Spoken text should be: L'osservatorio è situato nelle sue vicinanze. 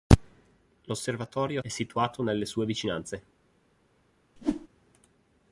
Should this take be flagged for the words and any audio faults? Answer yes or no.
yes